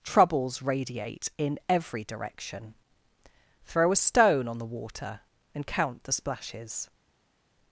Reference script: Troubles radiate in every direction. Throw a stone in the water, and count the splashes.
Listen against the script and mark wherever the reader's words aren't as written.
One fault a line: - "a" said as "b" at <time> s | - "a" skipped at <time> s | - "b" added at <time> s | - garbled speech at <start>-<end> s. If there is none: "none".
- "in" said as "on" at 4.5 s